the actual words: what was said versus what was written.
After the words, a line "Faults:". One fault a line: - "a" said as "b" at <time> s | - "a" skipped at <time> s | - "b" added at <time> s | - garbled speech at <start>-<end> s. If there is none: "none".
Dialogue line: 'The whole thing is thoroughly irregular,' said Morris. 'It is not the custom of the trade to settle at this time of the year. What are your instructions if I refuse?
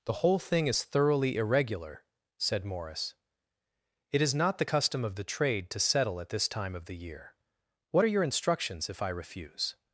'The whole thing is thoroughly irregular,' said Morris. 'It is not the custom of the trade to settle at this time of the year. What are your instructions if I refuse?
Faults:
none